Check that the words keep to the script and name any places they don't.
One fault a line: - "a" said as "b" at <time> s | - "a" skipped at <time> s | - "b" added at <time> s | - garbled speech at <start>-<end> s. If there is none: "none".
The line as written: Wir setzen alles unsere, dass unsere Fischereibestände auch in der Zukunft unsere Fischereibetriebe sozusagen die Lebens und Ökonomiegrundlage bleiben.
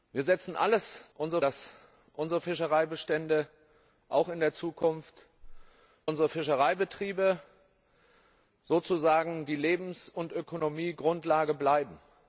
none